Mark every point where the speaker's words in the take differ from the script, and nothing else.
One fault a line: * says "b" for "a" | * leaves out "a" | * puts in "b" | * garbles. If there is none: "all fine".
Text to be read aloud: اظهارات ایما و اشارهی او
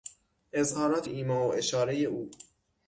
all fine